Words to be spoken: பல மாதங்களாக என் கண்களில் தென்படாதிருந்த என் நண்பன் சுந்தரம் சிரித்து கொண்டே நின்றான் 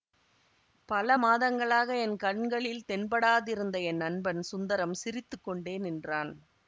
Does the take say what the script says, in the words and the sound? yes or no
yes